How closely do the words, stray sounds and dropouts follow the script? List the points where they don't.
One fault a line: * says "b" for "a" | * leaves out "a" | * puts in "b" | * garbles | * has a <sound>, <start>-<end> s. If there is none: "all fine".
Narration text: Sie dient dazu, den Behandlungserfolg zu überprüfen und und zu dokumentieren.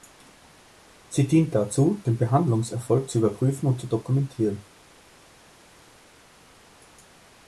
* leaves out "und"